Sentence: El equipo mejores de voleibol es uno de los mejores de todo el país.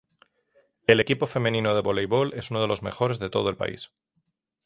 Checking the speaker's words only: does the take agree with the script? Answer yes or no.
no